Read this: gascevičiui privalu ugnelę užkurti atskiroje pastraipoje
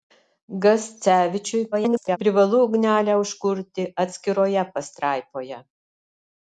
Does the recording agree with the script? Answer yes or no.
no